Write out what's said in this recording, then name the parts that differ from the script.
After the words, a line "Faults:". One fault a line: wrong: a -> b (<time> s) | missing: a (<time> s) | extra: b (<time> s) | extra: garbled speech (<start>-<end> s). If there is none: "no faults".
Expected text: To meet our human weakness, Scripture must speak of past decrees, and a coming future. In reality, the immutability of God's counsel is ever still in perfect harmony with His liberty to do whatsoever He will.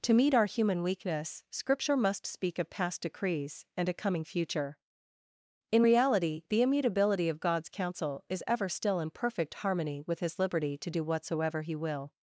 To meet our human weakness, Scripture must speak of past decrees, and a coming future. In reality, the immutability of God's counsel is ever still in perfect harmony with His liberty to do whatsoever He will.
Faults:
no faults